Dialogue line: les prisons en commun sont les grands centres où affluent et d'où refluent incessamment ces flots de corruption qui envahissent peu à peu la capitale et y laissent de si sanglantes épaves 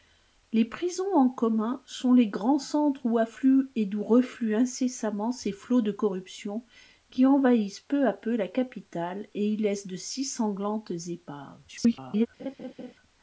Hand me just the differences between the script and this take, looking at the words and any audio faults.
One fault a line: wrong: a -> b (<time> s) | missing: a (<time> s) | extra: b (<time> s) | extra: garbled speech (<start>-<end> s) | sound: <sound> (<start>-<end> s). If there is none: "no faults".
extra: garbled speech (11.7-12.3 s)
sound: laugh (12.4-12.9 s)